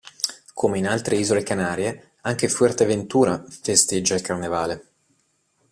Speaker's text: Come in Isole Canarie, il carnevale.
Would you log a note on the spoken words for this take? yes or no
yes